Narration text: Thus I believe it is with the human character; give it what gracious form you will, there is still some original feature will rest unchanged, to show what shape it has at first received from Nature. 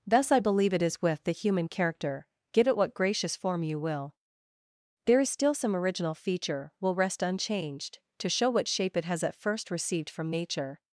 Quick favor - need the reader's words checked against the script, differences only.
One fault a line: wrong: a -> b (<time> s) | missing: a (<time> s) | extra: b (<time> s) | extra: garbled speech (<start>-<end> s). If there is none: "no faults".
no faults